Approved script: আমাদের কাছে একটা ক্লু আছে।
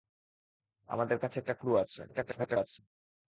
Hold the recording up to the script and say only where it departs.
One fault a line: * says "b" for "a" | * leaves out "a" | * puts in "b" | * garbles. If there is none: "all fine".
* garbles